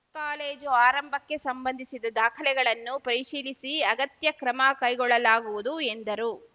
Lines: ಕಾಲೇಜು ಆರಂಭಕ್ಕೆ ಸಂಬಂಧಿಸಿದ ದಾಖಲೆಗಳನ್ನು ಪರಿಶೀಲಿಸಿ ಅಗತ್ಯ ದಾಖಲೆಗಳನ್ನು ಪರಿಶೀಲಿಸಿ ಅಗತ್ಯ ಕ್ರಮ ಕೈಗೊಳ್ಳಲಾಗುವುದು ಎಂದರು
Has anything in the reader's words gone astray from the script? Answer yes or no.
yes